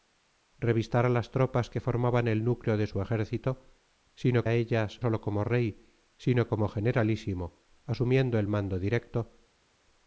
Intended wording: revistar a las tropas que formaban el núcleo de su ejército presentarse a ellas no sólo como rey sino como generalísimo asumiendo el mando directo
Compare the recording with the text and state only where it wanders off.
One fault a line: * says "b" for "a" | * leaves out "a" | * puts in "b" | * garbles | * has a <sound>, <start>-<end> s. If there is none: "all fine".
* says "sino" for "presentarse"
* leaves out "no"